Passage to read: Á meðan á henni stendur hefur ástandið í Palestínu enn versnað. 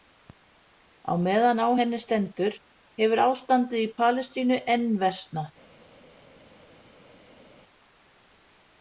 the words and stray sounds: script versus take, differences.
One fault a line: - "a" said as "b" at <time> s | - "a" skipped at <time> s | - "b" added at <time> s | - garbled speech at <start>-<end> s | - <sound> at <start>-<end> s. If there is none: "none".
none